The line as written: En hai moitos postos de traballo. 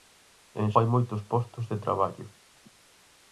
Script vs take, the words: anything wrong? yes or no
no